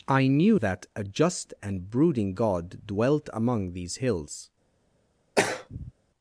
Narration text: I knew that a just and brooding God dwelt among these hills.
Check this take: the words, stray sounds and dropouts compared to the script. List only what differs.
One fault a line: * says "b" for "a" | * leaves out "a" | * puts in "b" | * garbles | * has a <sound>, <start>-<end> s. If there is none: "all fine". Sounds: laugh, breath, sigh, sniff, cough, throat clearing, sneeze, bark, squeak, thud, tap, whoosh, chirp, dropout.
* has a throat clearing, 5.4-5.9 s